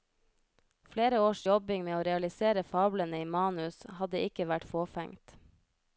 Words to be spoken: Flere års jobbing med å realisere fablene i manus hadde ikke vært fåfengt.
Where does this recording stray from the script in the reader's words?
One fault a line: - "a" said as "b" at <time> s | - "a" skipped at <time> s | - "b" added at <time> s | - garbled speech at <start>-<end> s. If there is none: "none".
none